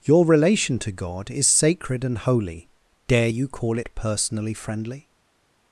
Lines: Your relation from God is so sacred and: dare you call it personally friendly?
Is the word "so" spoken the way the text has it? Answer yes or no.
no